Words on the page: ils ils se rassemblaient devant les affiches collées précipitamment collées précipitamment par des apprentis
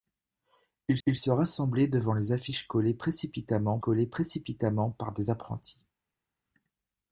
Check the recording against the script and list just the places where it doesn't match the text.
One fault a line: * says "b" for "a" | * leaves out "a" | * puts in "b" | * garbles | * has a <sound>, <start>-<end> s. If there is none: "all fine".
all fine